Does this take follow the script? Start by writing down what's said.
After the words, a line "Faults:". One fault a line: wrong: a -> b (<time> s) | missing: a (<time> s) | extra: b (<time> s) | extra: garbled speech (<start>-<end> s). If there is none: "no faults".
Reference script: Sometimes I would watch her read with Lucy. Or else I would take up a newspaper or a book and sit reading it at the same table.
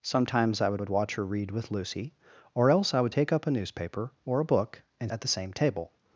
Sometimes I would would watch her read with Lucy. Or else I would take up a newspaper or a book and at the same table.
Faults:
extra: would (0.8 s)
missing: sit reading it (5.1 s)